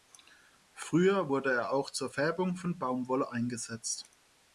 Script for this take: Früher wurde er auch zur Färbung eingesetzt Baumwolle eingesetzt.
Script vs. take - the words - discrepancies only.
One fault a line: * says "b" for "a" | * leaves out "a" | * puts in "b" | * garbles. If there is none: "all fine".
* says "von" for "eingesetzt"